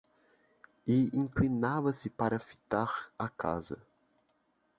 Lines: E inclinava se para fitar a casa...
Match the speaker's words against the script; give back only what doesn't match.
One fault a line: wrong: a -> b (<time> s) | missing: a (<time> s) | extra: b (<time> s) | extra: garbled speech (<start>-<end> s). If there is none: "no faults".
no faults